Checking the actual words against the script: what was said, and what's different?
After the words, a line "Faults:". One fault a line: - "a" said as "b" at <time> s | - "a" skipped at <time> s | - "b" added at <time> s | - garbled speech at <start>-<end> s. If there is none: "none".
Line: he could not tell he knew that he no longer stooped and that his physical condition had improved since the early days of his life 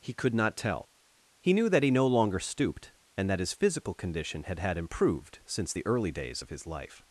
he could not tell he knew that he no longer stooped and that his physical condition had had improved since the early days of his life
Faults:
- "had" added at 4.6 s